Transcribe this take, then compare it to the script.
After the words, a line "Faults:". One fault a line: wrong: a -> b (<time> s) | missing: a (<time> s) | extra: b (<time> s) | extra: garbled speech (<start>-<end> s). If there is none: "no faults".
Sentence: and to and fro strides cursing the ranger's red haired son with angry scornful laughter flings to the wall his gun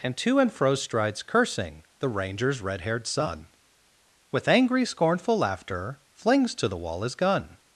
and to and fro strides cursing the ranger's red haired son with angry scornful laughter flings to the wall his gun
Faults:
no faults